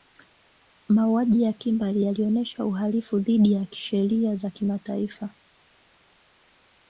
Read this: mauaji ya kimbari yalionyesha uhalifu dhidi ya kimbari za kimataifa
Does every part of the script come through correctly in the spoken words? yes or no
no